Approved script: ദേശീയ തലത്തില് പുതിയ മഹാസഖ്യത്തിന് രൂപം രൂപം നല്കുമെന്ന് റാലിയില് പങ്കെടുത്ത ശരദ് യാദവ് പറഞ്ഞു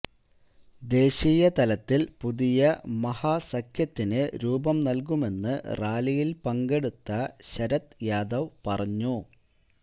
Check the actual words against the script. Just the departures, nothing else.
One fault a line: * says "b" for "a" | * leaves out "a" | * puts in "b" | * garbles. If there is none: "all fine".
* leaves out "രൂപം"